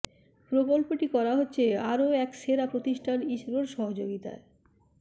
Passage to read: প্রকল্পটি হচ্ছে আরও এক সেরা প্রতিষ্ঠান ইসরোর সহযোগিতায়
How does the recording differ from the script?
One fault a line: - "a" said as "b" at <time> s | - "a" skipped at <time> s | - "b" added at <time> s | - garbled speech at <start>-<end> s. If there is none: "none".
- "করা" added at 1.1 s